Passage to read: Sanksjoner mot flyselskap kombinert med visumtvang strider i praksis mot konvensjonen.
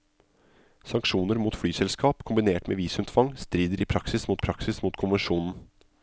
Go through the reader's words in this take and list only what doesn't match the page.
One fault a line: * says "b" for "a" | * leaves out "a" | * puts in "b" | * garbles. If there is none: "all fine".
* puts in "praksis mot"